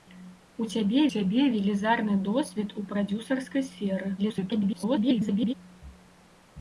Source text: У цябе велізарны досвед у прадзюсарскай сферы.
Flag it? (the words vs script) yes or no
yes